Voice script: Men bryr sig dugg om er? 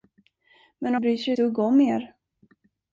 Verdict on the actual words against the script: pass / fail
pass